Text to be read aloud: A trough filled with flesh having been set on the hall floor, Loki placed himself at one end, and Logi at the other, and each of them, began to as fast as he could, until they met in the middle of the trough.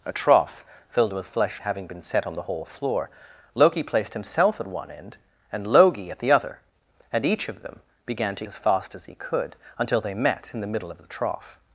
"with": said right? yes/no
yes